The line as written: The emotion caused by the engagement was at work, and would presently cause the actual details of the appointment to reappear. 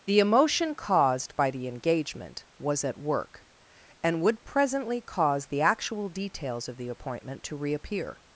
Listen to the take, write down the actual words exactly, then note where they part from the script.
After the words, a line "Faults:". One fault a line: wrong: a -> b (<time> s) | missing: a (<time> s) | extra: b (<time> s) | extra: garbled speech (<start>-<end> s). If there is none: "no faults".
The emotion caused by the engagement was at work, and would presently cause the actual details of the appointment to reappear.
Faults:
no faults